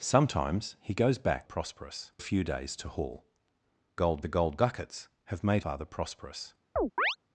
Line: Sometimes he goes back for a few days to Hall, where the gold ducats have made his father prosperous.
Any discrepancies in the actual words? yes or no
yes